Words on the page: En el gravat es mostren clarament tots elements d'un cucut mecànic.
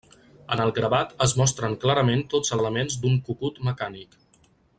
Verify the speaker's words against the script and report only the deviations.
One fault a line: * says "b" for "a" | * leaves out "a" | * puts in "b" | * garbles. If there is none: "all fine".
all fine